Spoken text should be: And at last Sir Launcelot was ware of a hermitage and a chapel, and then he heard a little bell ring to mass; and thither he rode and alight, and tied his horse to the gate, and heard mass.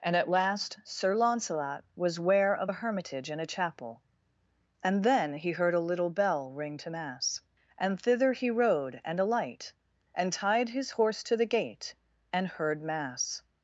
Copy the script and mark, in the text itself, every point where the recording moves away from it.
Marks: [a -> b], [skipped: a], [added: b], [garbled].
And at last Sir Launcelot was ware of a hermitage and a chapel, and then he heard a little bell ring to mass; and thither he rode and alight, and tied his horse to the gate, and heard mass.